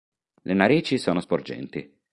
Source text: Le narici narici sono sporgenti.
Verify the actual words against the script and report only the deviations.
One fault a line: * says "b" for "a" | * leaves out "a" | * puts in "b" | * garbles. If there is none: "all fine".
* leaves out "narici"